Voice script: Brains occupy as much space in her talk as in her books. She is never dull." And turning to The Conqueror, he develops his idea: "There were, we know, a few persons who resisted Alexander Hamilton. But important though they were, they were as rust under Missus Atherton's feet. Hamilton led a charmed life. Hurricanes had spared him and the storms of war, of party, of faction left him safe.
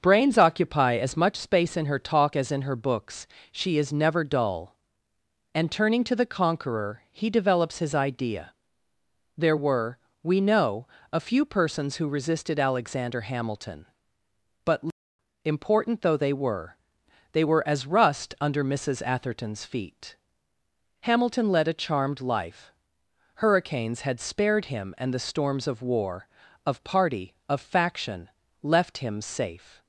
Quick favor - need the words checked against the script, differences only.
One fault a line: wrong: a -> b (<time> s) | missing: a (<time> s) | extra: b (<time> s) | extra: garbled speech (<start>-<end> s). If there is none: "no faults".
no faults